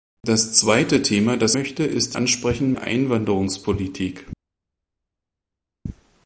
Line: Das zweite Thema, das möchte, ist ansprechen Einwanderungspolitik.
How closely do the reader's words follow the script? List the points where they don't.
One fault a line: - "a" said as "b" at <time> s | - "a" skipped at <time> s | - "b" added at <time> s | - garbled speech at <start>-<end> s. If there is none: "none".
none